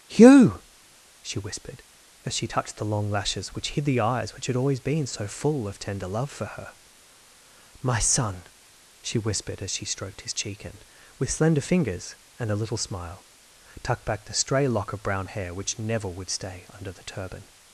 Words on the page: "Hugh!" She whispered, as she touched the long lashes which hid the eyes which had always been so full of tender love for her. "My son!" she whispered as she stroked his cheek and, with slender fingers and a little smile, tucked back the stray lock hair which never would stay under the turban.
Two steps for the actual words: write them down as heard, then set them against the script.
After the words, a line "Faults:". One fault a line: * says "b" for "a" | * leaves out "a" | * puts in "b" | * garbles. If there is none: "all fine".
"Hugh!" She whispered, as she touched the long lashes which hid the eyes which had always been so full of tender love for her. "My son!" she whispered as she stroked his cheek and, with slender fingers and a little smile, tucked back the stray lock of brown hair which never would stay under the turban.
Faults:
* puts in "of brown"